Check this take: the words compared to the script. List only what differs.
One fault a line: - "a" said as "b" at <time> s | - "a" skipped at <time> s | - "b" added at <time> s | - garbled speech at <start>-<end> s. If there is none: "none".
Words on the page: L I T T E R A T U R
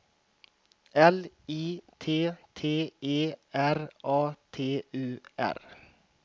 none